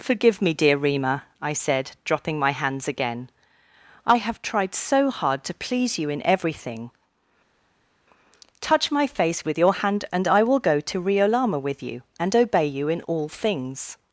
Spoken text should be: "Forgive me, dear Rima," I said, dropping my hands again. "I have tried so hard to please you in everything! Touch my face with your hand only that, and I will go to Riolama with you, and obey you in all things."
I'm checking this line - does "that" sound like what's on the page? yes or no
no